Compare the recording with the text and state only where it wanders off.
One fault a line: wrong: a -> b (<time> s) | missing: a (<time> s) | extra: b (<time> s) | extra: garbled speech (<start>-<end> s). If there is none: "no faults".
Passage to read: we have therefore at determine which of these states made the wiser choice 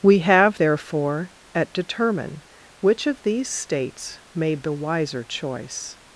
no faults